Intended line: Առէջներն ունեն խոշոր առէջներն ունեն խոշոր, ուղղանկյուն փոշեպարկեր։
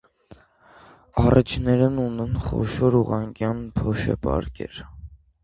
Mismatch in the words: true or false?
true